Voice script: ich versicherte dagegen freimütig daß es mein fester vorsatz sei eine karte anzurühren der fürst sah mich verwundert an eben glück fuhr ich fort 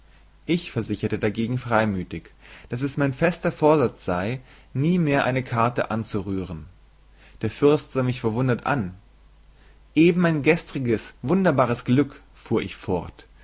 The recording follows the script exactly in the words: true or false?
false